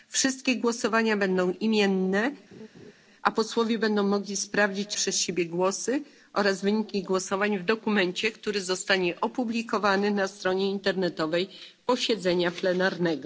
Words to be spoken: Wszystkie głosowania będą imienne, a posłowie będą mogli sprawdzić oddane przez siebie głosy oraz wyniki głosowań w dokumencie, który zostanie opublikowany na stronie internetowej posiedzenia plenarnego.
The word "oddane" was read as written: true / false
false